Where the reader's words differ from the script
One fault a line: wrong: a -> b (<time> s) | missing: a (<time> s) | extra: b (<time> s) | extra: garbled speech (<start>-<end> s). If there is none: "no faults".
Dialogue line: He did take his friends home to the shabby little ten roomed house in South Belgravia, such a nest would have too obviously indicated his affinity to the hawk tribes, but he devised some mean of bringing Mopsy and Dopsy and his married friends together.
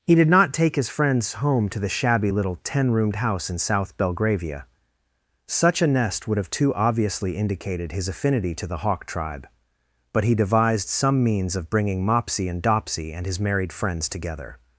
extra: not (0.3 s)
wrong: tribes -> tribe (9.1 s)
wrong: mean -> means (11.2 s)